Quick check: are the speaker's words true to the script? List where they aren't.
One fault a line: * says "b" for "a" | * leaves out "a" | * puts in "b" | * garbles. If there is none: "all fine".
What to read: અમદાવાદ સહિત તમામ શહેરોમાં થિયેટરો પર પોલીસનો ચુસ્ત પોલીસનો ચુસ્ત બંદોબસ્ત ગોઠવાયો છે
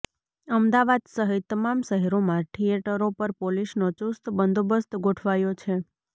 * leaves out "પોલીસનો ચુસ્ત"